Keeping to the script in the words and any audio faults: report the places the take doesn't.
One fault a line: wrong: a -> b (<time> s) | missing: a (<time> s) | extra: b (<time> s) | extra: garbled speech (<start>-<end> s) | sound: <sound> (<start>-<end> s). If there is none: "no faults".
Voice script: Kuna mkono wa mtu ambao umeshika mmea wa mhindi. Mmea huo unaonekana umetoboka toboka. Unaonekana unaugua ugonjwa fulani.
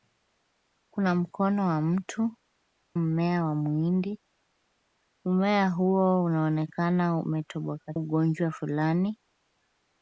missing: ambao umeshika (2.3 s)
missing: toboka Unaonekana unaugua (7.9 s)